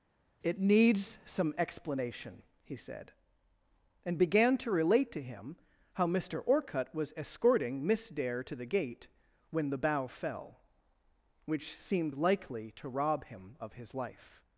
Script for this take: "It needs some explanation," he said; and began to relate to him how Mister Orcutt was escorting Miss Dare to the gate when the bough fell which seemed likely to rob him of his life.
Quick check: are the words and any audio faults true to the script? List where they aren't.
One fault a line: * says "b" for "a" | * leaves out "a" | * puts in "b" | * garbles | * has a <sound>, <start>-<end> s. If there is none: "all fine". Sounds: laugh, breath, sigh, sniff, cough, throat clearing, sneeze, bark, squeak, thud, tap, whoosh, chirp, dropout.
all fine